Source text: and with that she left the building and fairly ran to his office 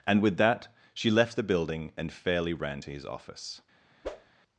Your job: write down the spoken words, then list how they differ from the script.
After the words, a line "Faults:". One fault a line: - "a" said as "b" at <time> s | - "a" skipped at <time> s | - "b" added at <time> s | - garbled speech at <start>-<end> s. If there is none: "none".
and with that she left the building and fairly ran to his office
Faults:
none